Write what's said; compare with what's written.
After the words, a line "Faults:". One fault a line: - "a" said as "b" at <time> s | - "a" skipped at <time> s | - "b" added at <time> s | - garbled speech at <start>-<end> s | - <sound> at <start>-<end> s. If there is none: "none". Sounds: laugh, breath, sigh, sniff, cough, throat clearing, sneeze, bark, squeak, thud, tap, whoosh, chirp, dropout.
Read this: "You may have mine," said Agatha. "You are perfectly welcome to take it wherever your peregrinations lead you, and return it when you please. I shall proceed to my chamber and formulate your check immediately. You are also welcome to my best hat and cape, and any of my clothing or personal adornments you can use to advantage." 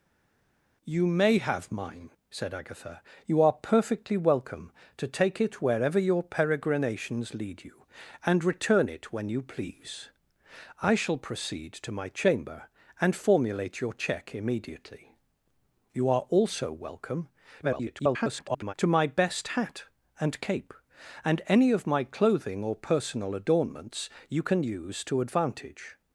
"You may have mine," said Agatha. "You are perfectly welcome to take it wherever your peregrinations lead you, and return it when you please. I shall proceed to my chamber and formulate your check immediately. You are also welcome [garbled] to my best hat and cape, and any of my clothing or personal adornments you can use to advantage."
Faults:
- garbled speech at 17.6-18.7 s